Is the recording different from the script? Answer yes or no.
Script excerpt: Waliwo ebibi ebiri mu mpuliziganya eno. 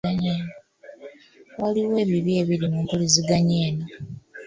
no